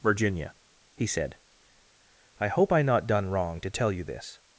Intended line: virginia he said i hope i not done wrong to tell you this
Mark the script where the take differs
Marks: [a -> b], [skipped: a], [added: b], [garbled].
virginia he said i hope i not done wrong to tell you this